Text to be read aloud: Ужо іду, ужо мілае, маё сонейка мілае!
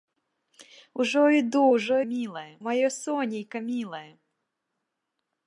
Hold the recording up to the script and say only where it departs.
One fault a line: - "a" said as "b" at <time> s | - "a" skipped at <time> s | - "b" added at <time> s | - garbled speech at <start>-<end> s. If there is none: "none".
none